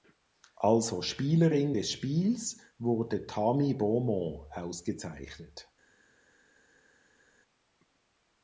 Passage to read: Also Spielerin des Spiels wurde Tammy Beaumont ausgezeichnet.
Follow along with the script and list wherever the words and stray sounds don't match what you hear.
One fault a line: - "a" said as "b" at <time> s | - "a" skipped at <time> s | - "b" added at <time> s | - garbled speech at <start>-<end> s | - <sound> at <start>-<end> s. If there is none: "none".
none